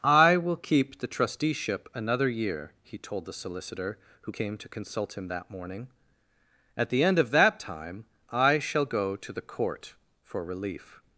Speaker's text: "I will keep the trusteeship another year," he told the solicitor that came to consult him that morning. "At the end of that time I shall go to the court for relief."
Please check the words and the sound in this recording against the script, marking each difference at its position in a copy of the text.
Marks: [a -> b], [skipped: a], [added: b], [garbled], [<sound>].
"I will keep the trusteeship another year," he told the solicitor [that -> who] came to consult him that morning. "At the end of that time I shall go to the court for relief."